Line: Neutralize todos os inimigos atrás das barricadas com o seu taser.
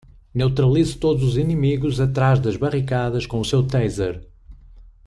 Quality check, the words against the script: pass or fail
pass